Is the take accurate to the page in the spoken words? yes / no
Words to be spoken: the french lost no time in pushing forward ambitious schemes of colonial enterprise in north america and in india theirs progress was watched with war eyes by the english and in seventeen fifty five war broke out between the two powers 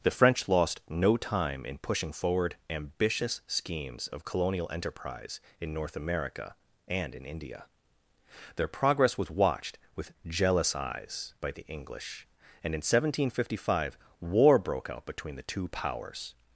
no